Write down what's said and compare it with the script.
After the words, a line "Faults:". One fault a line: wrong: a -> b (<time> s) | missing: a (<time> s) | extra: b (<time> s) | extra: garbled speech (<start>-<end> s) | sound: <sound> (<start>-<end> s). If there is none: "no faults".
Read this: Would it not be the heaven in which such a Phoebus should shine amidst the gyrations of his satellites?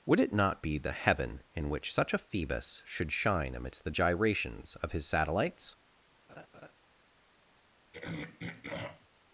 Would it not be the heaven in which such a Phoebus should shine amidst the gyrations of his satellites?
Faults:
sound: laugh (6.3-6.7 s)
sound: throat clearing (7.9-9.1 s)